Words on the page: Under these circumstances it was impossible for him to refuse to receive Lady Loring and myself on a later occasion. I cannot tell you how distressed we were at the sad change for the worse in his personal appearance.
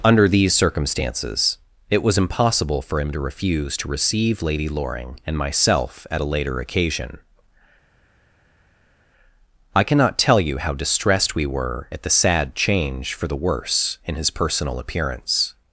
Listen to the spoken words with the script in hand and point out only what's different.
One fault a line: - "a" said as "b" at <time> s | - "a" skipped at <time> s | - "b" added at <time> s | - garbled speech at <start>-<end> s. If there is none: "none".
- "on" said as "at" at 6.1 s